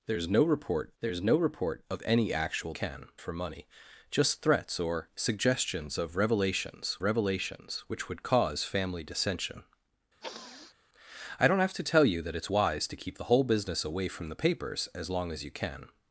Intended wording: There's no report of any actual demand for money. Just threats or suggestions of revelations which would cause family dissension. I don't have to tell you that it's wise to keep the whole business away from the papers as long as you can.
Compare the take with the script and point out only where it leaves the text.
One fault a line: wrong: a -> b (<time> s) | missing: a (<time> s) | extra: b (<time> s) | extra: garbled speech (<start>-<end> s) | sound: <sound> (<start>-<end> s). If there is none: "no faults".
extra: there's no report (1.0 s)
wrong: demand -> can (2.7 s)
extra: revelations (7.0 s)
sound: sniff (10.2-10.8 s)